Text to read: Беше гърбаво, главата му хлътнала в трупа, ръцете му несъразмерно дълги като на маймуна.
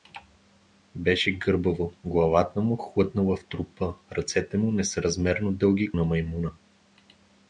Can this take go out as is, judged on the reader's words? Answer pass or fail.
fail